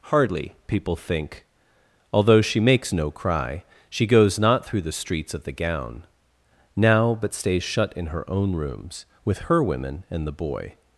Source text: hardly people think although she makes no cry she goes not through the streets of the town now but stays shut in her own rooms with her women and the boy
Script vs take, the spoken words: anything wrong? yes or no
yes